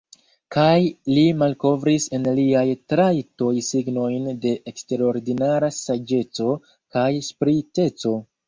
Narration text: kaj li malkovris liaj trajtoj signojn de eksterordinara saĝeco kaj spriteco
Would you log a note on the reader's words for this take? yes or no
yes